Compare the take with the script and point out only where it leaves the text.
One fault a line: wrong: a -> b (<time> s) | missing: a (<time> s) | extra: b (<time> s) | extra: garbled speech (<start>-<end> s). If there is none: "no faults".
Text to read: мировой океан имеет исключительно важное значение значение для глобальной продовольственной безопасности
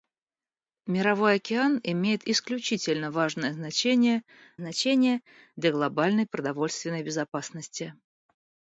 no faults